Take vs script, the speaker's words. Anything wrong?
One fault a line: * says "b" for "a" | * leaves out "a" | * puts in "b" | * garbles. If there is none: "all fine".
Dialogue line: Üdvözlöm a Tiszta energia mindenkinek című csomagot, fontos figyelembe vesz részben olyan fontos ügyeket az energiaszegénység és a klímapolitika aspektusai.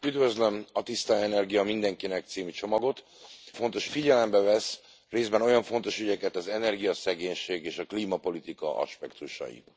all fine